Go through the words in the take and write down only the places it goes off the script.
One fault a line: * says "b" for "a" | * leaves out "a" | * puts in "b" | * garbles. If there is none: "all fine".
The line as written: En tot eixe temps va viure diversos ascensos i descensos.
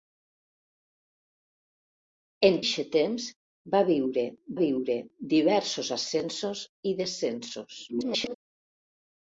* leaves out "tot"
* puts in "viure"
* garbles